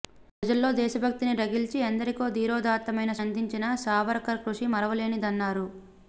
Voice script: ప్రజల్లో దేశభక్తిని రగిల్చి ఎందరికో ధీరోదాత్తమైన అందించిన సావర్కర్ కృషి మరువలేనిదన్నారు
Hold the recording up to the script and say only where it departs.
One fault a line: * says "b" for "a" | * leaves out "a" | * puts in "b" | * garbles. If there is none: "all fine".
all fine